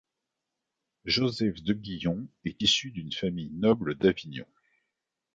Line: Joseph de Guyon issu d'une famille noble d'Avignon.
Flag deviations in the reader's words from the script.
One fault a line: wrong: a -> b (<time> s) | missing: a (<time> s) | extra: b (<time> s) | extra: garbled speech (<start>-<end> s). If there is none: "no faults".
extra: est (2.4 s)